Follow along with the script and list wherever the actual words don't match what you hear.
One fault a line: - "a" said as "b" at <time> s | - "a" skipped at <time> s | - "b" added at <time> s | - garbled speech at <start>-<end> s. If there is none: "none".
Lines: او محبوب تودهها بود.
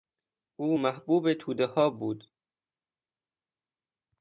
none